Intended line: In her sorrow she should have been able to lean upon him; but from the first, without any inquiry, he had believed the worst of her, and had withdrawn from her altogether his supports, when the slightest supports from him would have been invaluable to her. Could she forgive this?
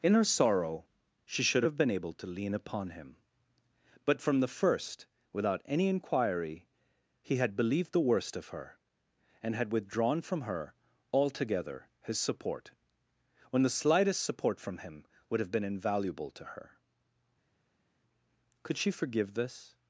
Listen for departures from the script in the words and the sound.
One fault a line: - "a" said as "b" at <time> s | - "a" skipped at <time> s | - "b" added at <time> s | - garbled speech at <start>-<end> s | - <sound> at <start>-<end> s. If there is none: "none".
- "supports" said as "support" at 12.2 s
- "supports" said as "support" at 14.2 s